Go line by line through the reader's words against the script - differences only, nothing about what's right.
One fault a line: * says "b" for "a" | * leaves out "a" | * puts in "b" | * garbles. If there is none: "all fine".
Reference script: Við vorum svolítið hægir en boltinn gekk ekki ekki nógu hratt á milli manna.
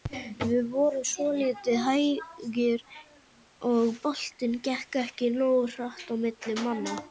* says "og" for "en"
* leaves out "ekki"